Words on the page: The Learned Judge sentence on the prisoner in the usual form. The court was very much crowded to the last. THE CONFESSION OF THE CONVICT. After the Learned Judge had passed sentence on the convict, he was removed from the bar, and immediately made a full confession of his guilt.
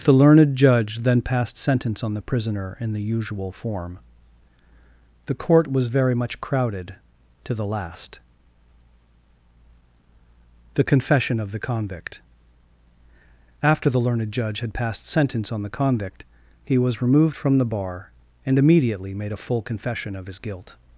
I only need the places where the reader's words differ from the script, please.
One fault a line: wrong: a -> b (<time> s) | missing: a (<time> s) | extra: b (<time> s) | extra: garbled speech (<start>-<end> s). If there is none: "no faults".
extra: then passed (1.0 s)